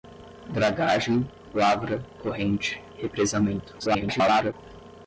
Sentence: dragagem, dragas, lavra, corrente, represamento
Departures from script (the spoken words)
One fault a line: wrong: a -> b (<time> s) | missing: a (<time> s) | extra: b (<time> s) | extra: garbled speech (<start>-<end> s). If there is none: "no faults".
missing: dragas (1.3 s)
extra: garbled speech (3.8-4.5 s)